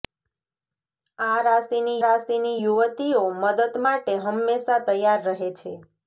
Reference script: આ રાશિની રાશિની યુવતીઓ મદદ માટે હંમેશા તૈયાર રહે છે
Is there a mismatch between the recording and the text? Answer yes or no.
no